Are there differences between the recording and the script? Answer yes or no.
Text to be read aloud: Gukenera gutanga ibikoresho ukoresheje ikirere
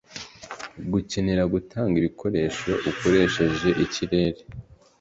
no